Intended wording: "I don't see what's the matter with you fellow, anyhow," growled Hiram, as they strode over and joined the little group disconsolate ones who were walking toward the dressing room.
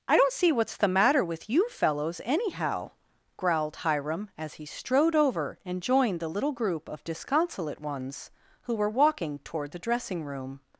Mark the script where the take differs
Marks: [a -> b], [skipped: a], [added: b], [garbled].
"I don't see what's the matter with you [fellow, -> fellows] anyhow," growled Hiram, as [they -> he] strode over and joined the little group [added: of] disconsolate ones who were walking toward the dressing room.